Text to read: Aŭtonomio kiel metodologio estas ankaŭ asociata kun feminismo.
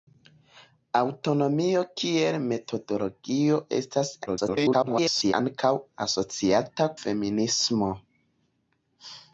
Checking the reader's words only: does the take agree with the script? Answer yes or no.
no